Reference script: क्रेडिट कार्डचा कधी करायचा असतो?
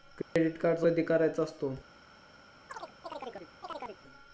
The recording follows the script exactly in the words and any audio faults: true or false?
false